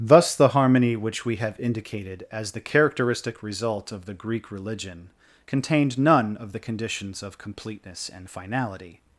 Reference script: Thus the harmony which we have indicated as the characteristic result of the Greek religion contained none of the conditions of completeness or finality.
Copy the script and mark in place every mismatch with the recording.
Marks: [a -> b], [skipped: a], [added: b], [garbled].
Thus the harmony which we have indicated as the characteristic result of the Greek religion contained none of the conditions of completeness [or -> and] finality.